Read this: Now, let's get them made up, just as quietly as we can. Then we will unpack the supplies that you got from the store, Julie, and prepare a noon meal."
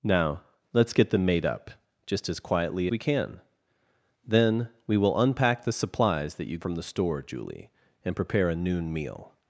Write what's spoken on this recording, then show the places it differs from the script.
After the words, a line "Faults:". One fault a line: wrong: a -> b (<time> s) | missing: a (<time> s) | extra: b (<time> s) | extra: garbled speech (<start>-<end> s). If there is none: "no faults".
Now, let's get them made up, just as quietly we can. Then we will unpack the supplies that you from the store, Julie, and prepare a noon meal."
Faults:
missing: as (2.9 s)
missing: got (6.6 s)